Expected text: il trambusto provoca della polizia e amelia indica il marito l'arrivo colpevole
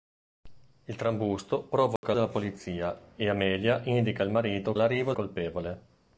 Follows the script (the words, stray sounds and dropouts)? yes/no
no